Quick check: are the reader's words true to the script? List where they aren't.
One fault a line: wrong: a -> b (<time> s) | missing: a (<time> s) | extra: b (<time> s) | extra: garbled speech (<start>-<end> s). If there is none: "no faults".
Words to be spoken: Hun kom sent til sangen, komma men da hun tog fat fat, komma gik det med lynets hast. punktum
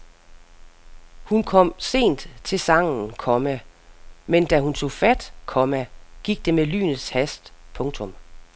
missing: fat (5.3 s)